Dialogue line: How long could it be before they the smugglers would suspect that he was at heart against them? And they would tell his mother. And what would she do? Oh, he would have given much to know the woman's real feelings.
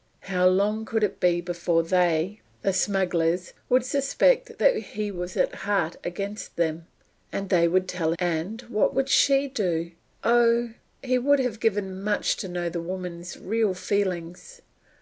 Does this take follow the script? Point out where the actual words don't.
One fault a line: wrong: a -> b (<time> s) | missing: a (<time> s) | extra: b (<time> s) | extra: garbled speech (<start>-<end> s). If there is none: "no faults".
missing: his mother (8.1 s)